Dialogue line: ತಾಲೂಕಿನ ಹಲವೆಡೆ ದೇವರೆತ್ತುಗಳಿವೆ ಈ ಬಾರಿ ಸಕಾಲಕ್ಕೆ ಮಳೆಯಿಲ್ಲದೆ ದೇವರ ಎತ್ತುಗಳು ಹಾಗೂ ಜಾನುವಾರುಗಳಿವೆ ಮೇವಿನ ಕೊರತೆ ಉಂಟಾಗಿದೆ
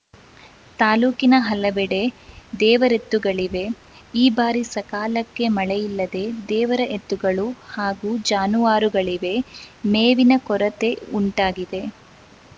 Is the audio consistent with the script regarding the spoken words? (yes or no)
yes